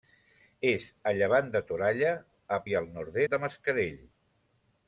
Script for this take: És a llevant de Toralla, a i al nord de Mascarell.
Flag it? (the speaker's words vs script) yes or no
no